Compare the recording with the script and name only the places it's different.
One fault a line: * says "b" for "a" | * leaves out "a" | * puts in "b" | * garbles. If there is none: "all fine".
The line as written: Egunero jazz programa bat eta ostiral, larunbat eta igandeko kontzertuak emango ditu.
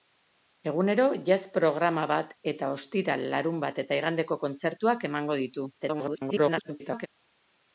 * garbles